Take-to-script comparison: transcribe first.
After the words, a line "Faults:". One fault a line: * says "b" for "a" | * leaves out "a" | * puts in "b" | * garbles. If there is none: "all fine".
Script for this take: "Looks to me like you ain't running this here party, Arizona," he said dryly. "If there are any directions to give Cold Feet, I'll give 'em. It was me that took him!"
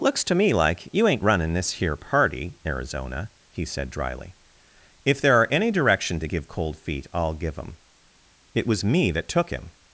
"Looks to me like you ain't running this here party, Arizona," he said dryly. "If there are any direction to give Cold Feet, I'll give 'em. It was me that took him!"
Faults:
* says "direction" for "directions"